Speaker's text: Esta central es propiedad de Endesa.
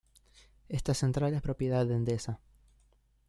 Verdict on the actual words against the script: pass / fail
pass